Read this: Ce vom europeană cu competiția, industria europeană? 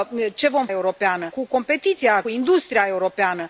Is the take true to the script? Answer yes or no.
yes